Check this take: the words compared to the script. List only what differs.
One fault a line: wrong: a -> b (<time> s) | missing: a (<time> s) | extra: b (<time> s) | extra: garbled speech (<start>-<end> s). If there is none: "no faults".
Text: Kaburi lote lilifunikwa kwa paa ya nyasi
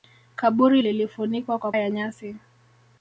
missing: lote (0.8 s)
missing: paa (1.7 s)